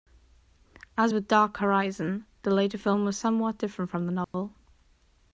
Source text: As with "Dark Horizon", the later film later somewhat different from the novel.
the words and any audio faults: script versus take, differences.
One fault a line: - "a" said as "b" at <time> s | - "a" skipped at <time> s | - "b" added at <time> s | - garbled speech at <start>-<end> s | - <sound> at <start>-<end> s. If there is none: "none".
- "later" said as "was" at 3.0 s
- dropout at 4.2-4.3 s